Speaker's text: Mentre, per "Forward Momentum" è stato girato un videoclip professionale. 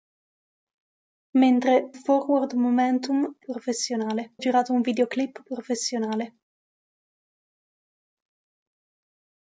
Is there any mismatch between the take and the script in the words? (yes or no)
yes